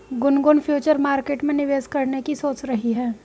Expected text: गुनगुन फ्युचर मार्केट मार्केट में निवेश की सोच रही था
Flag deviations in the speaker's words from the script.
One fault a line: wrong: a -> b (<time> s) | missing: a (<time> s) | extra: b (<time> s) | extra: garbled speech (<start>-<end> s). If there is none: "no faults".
missing: मार्केट (1.4 s)
extra: करने (1.9 s)
wrong: था -> है (2.9 s)